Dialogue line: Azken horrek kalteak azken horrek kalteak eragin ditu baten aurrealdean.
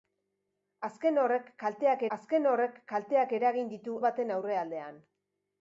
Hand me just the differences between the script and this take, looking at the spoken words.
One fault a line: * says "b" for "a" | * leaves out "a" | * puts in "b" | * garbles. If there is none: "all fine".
all fine